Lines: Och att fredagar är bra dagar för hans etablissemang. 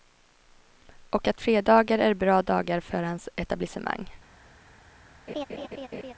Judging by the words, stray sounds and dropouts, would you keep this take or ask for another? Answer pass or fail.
fail